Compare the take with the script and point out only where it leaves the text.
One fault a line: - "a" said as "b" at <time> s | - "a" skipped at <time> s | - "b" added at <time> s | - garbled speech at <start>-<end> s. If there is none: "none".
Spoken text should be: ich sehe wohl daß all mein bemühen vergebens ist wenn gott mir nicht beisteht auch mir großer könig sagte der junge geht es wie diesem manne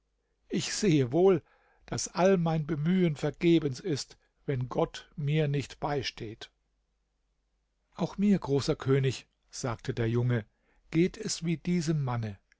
none